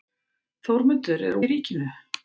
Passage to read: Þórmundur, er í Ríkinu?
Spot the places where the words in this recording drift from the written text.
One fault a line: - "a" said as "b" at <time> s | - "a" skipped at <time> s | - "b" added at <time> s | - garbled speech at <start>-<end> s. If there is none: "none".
none